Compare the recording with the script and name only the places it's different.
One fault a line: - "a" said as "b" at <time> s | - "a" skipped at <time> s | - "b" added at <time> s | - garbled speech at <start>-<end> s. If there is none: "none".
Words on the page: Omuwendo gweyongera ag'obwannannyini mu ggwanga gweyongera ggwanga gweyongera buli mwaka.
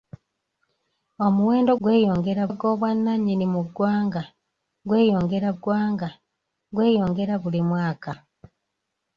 none